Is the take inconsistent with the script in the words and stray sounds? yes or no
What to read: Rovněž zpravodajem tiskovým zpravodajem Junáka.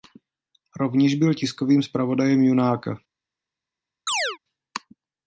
yes